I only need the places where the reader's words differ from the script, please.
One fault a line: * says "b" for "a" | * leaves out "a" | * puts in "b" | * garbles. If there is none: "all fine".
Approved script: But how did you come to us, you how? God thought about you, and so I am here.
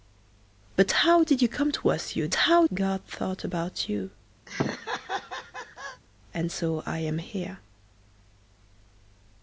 all fine